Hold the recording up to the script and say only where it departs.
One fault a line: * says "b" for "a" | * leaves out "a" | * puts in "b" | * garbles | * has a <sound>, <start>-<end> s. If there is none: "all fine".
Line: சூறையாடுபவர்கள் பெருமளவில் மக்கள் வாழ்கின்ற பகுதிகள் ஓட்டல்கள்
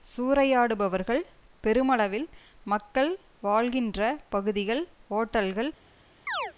* has a chirp, 6.3-6.5 s